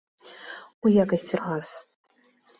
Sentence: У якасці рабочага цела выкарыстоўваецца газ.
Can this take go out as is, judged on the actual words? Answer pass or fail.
fail